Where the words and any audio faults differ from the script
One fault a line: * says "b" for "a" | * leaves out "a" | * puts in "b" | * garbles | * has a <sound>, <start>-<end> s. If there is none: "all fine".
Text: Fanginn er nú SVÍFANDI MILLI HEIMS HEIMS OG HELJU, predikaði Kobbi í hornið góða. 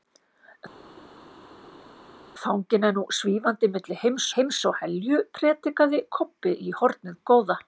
all fine